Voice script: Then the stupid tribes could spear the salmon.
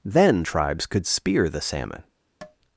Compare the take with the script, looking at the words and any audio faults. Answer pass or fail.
fail